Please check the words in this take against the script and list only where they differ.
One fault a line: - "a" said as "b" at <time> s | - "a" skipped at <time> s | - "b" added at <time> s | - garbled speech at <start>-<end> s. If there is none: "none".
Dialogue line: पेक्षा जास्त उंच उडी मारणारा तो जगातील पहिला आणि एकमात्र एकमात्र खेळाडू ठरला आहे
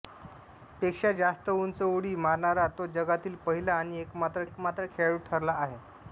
none